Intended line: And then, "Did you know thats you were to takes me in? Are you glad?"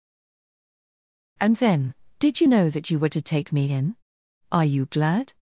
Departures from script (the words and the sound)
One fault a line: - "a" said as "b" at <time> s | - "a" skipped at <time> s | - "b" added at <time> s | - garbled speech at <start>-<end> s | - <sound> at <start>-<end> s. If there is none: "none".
- "thats" said as "that" at 2.7 s
- "takes" said as "take" at 3.2 s